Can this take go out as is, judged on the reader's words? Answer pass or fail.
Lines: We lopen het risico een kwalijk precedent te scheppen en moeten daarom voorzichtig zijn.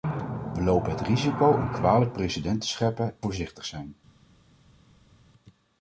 fail